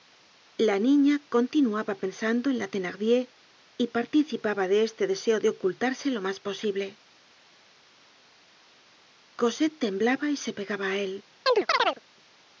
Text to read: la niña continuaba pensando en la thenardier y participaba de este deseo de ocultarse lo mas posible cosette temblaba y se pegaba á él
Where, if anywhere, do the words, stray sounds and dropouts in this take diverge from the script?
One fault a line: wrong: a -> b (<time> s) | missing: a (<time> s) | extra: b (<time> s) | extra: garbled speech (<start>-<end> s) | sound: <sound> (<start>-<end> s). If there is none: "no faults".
sound: chirp (11.5-12.0 s)